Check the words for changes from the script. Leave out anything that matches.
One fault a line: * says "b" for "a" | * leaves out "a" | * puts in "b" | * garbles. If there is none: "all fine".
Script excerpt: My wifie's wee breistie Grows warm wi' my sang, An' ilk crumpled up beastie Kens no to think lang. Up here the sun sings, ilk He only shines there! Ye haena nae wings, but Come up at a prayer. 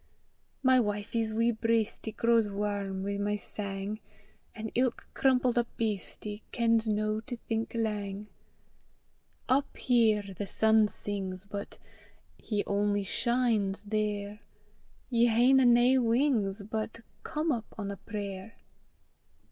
* says "but" for "ilk"
* says "on" for "at"